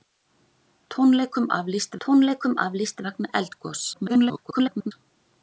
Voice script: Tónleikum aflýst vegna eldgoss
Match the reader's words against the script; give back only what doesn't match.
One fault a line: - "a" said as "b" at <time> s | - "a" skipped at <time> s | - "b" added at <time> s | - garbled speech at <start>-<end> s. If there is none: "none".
- "tónleikum aflýst" added at 2.0 s
- garbled speech at 3.9-4.9 s